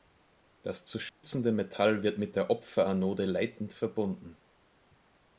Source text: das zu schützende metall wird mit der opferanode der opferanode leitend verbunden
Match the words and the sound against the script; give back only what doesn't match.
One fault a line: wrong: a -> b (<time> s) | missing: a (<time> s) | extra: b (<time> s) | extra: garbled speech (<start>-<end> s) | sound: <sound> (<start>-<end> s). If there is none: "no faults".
sound: dropout (1.1-1.2 s)
missing: der opferanode (3.2 s)